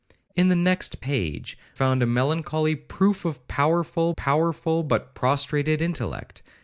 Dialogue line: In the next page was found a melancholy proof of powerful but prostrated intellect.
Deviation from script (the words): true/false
true